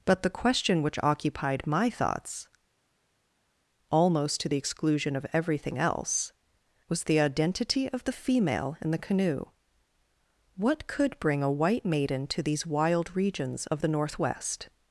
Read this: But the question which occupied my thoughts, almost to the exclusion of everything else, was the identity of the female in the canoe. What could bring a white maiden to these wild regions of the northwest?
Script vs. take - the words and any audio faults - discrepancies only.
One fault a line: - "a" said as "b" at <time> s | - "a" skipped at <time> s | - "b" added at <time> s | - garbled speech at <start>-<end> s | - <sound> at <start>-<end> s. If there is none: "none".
none